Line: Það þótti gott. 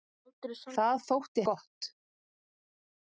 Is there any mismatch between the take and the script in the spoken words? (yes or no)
no